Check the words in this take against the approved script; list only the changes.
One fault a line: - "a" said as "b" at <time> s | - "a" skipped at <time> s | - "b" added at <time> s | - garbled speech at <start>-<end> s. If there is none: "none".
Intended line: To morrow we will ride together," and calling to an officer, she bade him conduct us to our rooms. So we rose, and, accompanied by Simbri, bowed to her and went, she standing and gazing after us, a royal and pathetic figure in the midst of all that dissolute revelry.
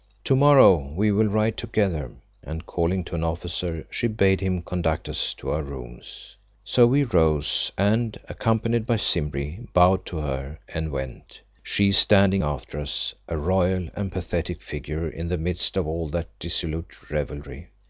- "and gazing" skipped at 12.4 s